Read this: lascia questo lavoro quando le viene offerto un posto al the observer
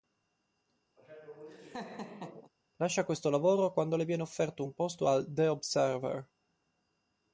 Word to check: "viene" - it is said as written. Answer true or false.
true